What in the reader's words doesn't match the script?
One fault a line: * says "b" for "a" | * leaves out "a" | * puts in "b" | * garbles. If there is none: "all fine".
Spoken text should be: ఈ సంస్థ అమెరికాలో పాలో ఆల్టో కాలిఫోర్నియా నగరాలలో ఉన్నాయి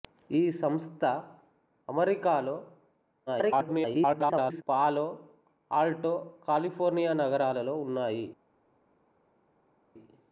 * garbles